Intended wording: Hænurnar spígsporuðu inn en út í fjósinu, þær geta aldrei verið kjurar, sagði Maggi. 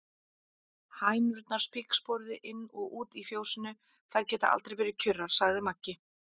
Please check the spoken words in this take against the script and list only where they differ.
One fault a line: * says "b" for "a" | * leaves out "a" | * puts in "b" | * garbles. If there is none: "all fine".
* says "og" for "en"